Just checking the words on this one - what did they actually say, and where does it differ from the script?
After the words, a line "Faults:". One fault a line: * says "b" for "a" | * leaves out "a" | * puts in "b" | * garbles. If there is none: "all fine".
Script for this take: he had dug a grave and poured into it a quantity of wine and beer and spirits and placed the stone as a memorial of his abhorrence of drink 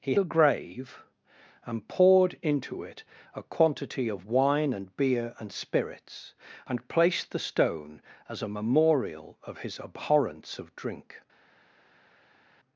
he a grave and poured into it a quantity of wine and beer and spirits and placed the stone as a memorial of his abhorrence of drink
Faults:
* leaves out "had dug"